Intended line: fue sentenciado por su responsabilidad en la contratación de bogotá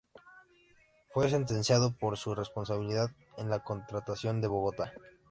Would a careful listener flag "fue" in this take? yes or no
no